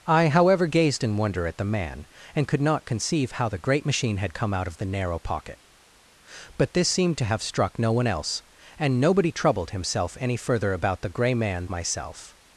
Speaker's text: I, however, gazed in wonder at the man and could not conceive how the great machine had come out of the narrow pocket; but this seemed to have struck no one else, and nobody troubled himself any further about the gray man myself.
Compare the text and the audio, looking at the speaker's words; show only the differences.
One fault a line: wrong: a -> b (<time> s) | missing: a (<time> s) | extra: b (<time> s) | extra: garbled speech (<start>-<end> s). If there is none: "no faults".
no faults